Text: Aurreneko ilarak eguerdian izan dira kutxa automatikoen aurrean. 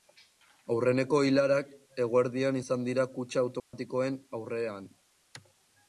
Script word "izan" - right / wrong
right